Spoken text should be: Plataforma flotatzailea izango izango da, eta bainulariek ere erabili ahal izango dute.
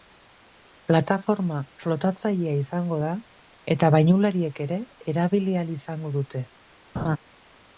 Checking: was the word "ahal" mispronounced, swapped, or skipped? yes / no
no